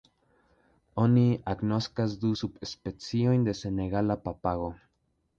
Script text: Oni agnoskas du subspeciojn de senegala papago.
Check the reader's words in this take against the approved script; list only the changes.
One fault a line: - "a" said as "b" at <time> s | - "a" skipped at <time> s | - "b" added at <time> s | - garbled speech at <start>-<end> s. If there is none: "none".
none